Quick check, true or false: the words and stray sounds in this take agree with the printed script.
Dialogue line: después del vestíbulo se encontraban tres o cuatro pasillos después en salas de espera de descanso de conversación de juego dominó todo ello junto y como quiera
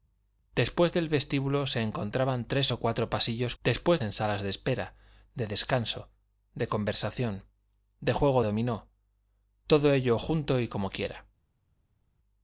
true